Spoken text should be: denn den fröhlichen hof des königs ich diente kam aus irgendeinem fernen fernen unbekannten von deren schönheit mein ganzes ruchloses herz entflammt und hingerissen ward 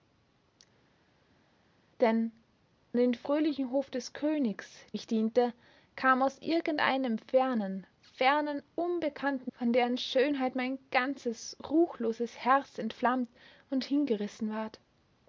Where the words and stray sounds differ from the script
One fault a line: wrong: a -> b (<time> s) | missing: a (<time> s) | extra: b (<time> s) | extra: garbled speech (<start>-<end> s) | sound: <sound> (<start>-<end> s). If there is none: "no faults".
no faults